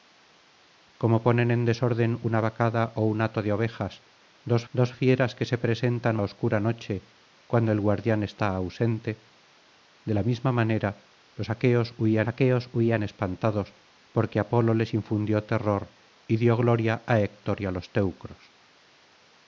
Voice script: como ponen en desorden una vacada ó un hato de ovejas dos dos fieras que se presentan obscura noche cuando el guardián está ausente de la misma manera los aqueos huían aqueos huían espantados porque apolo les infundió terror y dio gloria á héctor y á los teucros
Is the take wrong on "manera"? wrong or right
right